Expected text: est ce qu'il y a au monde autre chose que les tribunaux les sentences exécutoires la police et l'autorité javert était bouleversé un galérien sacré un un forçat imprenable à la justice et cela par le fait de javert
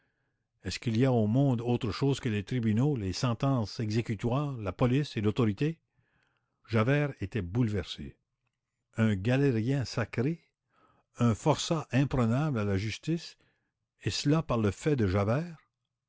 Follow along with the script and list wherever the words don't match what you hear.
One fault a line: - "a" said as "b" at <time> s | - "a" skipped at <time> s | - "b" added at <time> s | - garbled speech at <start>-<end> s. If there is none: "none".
- "un" skipped at 11.3 s